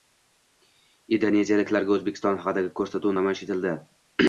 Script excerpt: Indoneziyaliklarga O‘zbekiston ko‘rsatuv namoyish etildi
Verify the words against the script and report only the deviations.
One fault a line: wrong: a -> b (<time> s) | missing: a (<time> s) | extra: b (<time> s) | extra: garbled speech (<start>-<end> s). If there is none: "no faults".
extra: haqidagi (2.5 s)